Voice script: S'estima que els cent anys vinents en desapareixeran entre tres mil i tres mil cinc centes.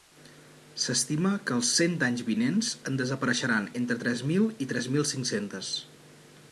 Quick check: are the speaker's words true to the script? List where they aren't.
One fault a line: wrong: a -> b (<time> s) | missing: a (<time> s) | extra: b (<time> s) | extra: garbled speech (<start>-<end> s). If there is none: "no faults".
no faults